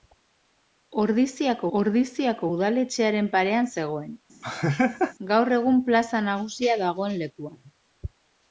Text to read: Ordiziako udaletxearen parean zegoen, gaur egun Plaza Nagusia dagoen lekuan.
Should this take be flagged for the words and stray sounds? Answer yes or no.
yes